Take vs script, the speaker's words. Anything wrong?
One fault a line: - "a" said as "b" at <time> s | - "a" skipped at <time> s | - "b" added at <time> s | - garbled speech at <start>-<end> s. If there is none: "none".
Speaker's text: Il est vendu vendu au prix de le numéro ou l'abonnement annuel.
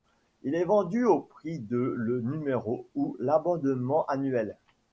- "vendu" skipped at 1.1 s